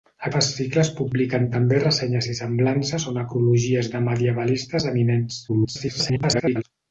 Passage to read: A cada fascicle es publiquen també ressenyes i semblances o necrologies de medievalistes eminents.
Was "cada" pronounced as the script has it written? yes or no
no